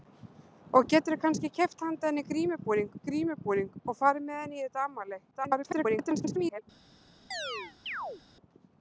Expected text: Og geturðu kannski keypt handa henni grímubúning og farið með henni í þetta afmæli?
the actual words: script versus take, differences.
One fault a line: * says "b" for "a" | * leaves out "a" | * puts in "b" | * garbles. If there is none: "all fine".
* puts in "grímubúning"
* garbles